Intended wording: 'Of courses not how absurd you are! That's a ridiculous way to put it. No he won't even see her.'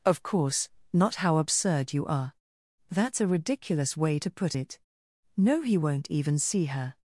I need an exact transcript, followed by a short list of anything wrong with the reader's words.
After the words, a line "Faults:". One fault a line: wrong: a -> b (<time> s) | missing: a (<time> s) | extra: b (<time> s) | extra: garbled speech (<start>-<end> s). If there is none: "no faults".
'Of course not how absurd you are! That's a ridiculous way to put it. No he won't even see her.'
Faults:
wrong: courses -> course (0.2 s)